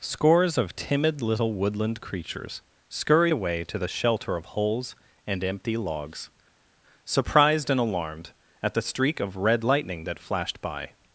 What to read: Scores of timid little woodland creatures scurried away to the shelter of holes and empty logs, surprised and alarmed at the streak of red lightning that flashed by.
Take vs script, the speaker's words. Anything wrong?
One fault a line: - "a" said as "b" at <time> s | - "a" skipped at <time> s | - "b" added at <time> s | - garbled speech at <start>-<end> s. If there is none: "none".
none